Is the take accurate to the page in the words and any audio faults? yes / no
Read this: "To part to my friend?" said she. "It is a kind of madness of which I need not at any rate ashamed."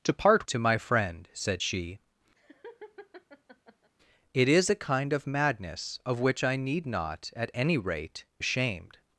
no